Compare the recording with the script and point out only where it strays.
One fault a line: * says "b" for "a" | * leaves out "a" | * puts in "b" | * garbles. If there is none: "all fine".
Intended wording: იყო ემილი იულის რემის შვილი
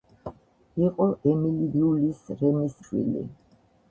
all fine